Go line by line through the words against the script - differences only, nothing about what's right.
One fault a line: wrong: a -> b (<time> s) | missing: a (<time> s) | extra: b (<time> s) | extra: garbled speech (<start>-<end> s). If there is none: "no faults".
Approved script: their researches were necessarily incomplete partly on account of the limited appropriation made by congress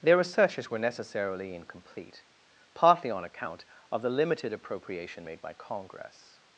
no faults